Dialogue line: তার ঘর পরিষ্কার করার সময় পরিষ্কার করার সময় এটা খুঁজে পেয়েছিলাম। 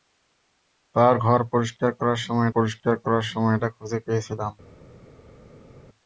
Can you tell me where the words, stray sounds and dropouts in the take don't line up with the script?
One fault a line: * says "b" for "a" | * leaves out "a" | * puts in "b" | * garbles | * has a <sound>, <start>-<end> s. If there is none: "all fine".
all fine